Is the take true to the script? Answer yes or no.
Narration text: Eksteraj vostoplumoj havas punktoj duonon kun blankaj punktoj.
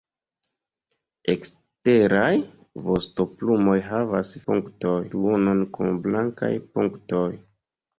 yes